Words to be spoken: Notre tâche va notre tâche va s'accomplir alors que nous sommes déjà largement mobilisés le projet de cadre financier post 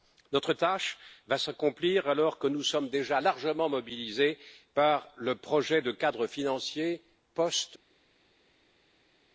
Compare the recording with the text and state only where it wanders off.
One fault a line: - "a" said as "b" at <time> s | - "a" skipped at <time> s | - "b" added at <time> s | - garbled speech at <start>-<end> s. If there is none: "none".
- "notre tâche va" skipped at 1.4 s
- "par" added at 4.7 s